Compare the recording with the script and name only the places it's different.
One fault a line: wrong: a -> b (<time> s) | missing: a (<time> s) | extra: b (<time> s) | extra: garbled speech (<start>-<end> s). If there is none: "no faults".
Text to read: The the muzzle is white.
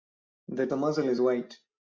no faults